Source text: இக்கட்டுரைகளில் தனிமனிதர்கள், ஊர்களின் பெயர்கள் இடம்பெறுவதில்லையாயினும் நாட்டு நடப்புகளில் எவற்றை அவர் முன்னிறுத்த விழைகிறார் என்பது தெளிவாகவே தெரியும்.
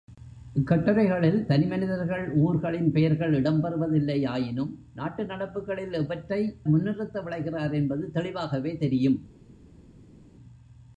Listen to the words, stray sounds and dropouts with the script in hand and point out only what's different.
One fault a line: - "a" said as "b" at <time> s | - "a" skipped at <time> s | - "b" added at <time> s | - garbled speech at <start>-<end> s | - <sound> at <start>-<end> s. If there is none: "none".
- "அவர்" skipped at 6.4 s